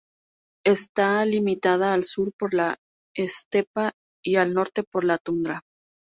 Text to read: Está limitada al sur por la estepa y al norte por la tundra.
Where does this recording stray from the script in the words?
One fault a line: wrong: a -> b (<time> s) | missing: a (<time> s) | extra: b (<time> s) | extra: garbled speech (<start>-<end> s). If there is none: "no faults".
no faults